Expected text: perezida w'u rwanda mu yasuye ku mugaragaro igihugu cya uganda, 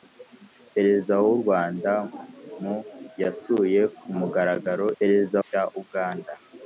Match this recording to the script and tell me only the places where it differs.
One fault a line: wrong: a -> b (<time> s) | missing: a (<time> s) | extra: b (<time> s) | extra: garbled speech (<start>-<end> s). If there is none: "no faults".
wrong: igihugu -> perezida (5.0 s)